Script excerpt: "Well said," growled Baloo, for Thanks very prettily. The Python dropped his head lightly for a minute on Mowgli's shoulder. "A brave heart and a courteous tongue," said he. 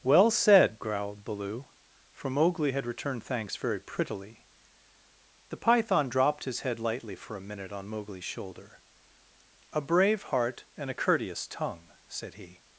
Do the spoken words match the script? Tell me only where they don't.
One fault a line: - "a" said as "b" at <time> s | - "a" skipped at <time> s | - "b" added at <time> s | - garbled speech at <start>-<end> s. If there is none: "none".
- "Mowgli had returned" added at 2.3 s